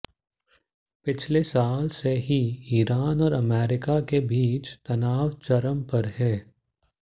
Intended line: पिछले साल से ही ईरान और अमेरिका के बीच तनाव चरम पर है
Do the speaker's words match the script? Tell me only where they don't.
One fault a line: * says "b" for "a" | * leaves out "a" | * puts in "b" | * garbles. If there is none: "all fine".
all fine